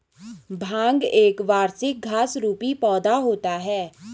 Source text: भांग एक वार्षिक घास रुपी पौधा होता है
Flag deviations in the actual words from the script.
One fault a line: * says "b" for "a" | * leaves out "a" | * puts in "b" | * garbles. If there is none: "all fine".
all fine